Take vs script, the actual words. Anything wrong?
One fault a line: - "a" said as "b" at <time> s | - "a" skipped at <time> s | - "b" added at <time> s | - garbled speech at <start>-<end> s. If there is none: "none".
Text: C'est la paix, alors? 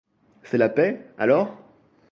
none